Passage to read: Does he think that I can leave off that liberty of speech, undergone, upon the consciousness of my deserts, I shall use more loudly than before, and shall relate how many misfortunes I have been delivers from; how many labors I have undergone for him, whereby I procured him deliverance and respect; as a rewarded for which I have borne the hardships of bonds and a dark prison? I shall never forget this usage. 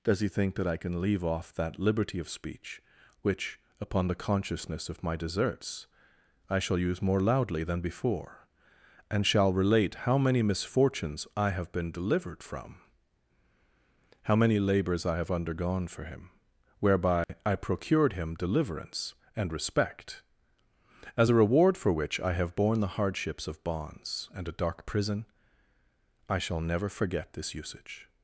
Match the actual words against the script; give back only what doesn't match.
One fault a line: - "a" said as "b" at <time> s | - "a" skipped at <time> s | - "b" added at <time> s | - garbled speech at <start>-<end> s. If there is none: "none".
- "undergone" said as "which" at 3.2 s
- "delivers" said as "delivered" at 11.9 s
- "rewarded" said as "reward" at 21.3 s